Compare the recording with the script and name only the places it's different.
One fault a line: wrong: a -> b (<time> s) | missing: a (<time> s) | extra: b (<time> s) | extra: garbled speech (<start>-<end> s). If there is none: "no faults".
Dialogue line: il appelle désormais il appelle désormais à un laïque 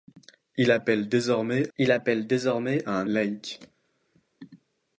no faults